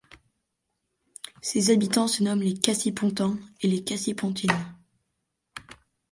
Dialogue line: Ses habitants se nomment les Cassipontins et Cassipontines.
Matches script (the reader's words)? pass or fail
fail